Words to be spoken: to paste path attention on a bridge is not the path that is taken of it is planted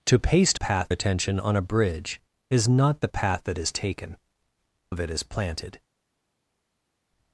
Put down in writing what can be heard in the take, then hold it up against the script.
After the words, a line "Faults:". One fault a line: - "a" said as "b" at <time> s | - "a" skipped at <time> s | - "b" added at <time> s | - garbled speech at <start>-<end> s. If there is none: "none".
to paste path attention on a bridge is not the path that is taken of it is planted
Faults:
none